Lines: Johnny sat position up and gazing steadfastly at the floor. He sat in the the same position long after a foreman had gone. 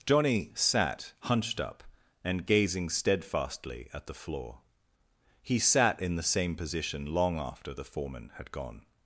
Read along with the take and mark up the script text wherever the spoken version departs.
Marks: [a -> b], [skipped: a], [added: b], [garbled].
Johnny sat [position -> hunched] up and gazing steadfastly at the floor. He sat in the [skipped: the] same position long after [a -> the] foreman had gone.